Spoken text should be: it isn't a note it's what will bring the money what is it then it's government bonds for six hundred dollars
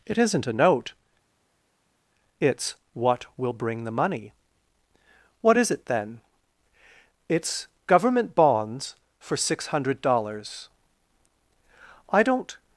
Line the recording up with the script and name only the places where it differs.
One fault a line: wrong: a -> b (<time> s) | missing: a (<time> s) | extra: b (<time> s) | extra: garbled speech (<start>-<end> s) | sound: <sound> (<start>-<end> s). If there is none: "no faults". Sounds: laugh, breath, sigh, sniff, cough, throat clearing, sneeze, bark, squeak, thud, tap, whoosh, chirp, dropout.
extra: i don't (12.1 s)